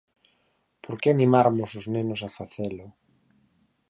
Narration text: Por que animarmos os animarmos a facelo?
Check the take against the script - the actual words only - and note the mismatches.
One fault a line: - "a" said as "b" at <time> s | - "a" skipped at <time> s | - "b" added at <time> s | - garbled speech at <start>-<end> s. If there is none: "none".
- "animarmos" said as "nenos" at 1.9 s